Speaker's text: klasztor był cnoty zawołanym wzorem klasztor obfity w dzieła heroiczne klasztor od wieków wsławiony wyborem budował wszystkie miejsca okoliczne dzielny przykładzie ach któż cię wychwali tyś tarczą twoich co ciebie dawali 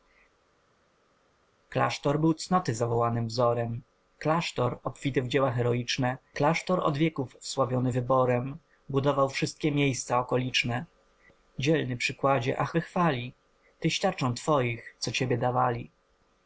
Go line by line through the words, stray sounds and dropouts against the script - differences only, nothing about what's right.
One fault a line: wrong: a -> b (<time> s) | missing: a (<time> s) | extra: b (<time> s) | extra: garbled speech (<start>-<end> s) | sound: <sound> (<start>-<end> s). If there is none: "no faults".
missing: któż cię (12.7 s)